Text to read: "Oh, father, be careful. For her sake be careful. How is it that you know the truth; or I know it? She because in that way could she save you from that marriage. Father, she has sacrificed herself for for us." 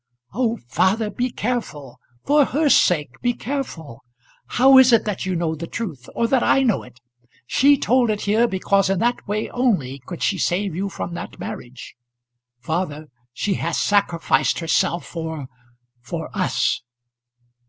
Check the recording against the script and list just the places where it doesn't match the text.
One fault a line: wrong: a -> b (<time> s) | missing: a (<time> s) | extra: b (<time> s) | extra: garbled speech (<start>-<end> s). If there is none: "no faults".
extra: that (6.3 s)
extra: told it here (7.8 s)
extra: only (9.5 s)